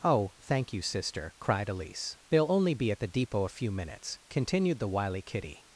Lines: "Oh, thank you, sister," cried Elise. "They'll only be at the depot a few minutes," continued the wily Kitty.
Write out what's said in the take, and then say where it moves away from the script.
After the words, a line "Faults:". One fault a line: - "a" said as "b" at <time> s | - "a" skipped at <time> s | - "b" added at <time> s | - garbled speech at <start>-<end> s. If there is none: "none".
"Oh, thank you, sister," cried Elise. "They'll only be at the depot a few minutes," continued the wily Kitty.
Faults:
none